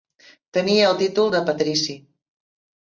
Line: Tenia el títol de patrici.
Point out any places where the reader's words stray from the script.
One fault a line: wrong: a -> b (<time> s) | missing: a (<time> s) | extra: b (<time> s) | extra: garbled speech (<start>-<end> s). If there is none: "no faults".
no faults